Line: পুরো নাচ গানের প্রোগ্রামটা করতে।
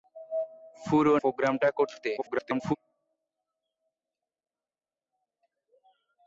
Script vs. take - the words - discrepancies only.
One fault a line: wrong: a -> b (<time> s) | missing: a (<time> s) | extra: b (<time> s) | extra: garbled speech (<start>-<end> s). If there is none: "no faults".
missing: নাচ গানের (1.1 s)
extra: garbled speech (2.2-2.8 s)